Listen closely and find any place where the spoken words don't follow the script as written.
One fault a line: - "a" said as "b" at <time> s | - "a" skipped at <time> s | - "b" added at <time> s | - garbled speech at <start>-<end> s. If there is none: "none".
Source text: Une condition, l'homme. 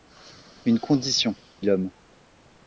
none